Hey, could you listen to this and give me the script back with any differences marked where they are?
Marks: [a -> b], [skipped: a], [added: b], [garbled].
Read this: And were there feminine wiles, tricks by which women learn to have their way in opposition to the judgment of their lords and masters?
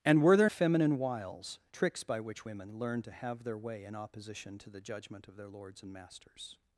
And were there feminine wiles, tricks by which women learn to have their way in opposition to the judgment of their lords and masters?